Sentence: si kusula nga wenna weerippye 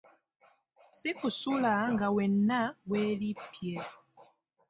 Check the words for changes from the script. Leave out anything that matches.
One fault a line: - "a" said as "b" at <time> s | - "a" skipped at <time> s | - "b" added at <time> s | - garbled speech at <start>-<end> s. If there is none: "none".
none